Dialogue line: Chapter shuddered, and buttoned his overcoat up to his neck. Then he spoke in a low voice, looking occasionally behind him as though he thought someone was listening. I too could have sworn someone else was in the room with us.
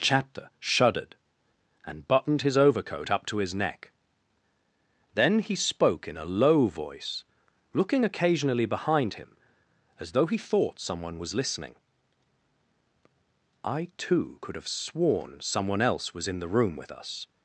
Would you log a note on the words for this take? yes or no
no